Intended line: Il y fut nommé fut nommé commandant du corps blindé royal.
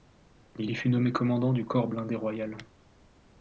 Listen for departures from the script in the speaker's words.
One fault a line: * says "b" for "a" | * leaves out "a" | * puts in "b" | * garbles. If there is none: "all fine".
* leaves out "fut nommé"